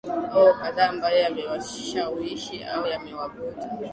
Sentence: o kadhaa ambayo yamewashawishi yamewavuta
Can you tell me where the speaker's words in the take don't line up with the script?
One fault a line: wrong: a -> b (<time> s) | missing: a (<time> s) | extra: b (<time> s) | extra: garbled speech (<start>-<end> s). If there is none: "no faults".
extra: au (2.6 s)